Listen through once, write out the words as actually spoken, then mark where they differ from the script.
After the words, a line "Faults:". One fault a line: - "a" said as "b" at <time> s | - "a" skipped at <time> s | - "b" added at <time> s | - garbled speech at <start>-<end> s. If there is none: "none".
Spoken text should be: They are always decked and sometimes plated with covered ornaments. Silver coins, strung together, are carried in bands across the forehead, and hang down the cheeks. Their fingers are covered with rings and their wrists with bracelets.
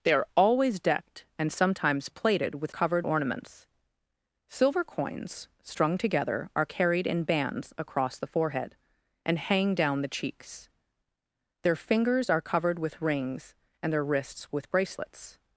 They are always decked and sometimes plated with covered ornaments. Silver coins, strung together, are carried in bands across the forehead, and hang down the cheeks. Their fingers are covered with rings and their wrists with bracelets.
Faults:
none